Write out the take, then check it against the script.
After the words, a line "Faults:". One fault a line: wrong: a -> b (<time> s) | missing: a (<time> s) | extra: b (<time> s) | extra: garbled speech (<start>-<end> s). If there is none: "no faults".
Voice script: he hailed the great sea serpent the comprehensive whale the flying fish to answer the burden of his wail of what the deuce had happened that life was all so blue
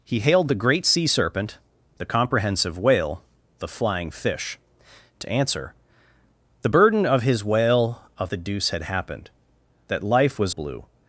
he hailed the great sea serpent the comprehensive whale the flying fish to answer the burden of his wail of the deuce had happened that life was blue
Faults:
missing: what (8.3 s)
missing: all so (10.6 s)